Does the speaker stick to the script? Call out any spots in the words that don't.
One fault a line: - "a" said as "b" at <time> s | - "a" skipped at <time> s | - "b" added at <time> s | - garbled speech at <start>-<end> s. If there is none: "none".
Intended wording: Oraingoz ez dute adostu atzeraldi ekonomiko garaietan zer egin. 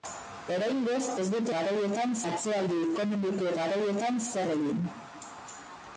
- "adostu" said as "garaietan" at 1.5 s